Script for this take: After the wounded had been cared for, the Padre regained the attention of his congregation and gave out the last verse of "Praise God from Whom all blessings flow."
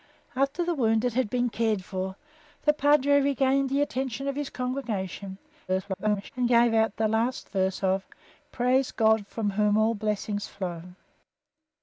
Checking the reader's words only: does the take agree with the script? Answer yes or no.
no